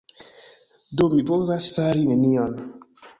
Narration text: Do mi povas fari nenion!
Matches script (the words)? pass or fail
pass